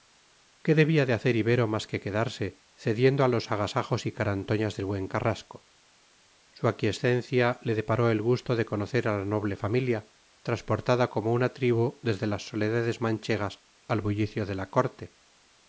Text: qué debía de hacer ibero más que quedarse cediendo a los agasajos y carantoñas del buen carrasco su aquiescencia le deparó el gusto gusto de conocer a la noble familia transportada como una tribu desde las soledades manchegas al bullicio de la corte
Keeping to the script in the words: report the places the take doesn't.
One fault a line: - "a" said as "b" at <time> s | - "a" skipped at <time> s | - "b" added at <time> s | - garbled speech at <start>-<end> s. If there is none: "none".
- "gusto" skipped at 8.6 s